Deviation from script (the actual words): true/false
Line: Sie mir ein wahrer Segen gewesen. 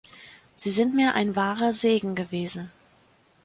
true